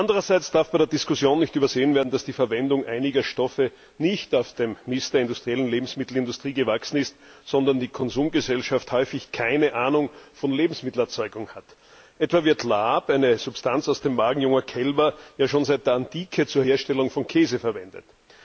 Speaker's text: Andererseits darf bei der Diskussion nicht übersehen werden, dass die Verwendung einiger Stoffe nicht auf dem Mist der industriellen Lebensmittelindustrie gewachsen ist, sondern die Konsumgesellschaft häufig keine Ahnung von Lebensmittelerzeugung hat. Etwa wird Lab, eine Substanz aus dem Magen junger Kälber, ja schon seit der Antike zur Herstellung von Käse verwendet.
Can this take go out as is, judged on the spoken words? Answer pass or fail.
pass